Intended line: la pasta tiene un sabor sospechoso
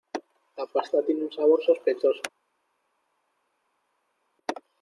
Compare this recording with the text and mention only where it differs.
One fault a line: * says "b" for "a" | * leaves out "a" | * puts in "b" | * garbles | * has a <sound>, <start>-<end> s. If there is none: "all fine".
all fine